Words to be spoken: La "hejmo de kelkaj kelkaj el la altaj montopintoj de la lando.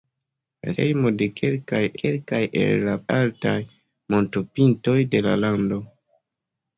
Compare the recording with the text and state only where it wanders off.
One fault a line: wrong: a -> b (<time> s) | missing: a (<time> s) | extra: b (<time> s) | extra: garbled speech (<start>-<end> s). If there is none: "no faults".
no faults